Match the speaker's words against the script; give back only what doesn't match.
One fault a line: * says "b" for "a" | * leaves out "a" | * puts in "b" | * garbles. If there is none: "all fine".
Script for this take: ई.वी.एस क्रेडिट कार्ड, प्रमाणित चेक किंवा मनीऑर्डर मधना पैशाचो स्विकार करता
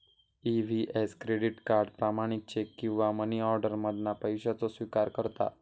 all fine